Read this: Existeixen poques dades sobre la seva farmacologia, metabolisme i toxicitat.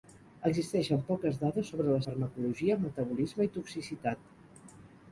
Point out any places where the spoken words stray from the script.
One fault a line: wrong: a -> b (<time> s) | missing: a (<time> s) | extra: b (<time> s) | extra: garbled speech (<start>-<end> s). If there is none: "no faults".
missing: seva (2.0 s)